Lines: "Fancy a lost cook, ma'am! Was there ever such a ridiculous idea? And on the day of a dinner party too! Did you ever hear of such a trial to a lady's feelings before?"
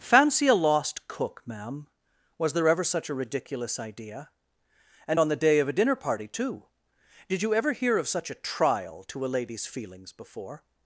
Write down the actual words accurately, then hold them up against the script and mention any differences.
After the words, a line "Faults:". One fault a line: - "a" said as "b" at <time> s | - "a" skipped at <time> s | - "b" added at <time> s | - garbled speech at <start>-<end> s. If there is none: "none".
"Fancy a lost cook, ma'am! Was there ever such a ridiculous idea? And on the day of a dinner party too! Did you ever hear of such a trial to a lady's feelings before?"
Faults:
none